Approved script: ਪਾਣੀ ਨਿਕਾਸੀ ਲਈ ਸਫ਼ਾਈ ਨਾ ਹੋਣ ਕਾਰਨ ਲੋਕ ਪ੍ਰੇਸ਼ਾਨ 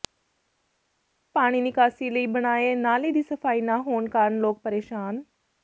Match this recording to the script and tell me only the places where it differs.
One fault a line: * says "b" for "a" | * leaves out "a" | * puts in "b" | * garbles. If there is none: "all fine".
* puts in "ਬਣਾਏ ਨਾਲੇ ਦੀ"